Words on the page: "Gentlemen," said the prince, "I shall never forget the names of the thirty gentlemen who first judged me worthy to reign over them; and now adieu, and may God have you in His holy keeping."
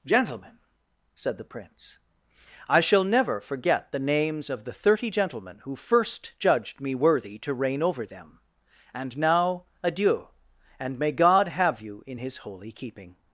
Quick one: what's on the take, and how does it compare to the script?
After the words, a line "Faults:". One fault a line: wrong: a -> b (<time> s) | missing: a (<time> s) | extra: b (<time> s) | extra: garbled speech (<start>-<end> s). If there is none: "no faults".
"Gentlemen," said the prince, "I shall never forget the names of the thirty gentlemen who first judged me worthy to reign over them; and now adieu, and may God have you in His holy keeping."
Faults:
no faults